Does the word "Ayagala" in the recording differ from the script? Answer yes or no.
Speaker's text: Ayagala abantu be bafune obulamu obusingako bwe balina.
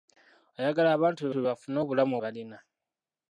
no